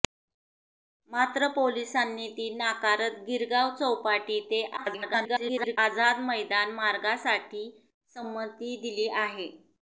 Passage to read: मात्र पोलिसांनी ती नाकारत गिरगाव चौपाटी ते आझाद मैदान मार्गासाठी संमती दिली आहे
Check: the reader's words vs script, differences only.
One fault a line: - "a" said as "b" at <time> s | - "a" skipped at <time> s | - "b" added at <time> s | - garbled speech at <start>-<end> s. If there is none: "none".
- garbled speech at 4.8-5.8 s